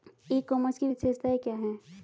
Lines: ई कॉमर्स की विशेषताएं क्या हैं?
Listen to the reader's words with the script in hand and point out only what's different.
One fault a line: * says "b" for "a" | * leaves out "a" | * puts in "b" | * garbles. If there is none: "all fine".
all fine